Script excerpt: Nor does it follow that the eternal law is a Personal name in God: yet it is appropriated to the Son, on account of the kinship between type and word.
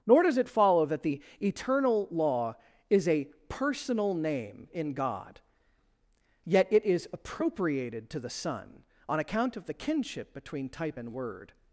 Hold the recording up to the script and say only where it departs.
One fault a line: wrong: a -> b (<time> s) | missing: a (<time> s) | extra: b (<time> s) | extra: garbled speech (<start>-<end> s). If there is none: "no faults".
no faults